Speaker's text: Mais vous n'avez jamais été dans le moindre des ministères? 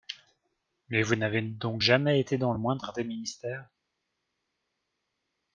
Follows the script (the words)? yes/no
no